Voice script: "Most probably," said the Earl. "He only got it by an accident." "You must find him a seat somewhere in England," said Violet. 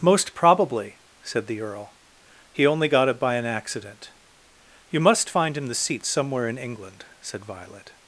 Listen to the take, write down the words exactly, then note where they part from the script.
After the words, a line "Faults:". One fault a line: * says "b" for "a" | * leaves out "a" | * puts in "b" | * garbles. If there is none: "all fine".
"Most probably," said the Earl. "He only got it by an accident." "You must find him the seat somewhere in England," said Violet.
Faults:
* says "the" for "a"